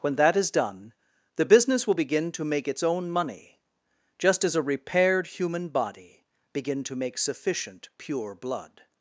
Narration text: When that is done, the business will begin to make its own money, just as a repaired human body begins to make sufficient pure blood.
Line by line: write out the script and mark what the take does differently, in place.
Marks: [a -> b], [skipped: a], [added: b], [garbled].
When that is done, the business will begin to make its own money, just as a repaired human body [begins -> begin] to make sufficient pure blood.